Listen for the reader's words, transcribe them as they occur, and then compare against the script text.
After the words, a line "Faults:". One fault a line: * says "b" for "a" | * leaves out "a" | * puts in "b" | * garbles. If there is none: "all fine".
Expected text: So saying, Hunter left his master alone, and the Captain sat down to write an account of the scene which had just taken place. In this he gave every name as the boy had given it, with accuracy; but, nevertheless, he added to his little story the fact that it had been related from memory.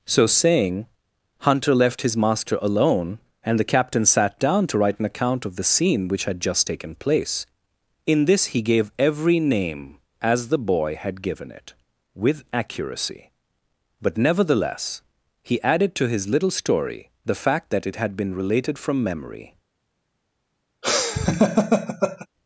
So saying, Hunter left his master alone, and the Captain sat down to write an account of the scene which had just taken place. In this he gave every name as the boy had given it, with accuracy; but, nevertheless, he added to his little story the fact that it had been related from memory.
Faults:
all fine